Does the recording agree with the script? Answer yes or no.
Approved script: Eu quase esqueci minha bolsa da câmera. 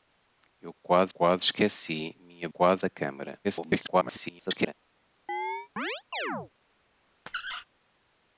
no